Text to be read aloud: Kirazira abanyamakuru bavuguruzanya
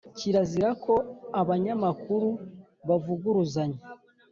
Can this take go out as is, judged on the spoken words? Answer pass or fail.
fail